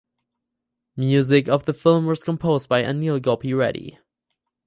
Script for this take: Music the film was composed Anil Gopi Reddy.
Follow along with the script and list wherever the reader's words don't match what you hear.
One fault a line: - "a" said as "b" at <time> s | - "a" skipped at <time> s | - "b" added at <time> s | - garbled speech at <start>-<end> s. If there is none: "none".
- "of" added at 1.5 s
- "by" added at 2.7 s